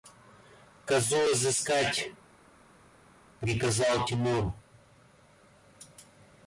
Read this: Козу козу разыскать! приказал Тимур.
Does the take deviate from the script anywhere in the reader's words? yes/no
yes